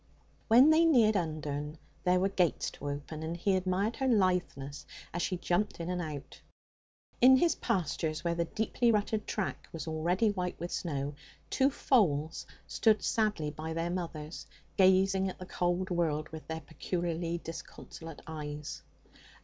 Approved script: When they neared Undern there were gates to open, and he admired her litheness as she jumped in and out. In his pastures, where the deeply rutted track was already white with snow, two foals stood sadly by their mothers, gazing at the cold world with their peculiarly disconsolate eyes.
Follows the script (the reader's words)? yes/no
yes